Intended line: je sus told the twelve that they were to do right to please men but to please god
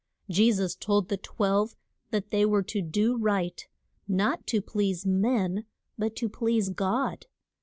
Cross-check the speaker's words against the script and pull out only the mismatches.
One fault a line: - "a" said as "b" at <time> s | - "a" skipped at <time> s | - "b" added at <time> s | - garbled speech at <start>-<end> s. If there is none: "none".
- "not" added at 4.1 s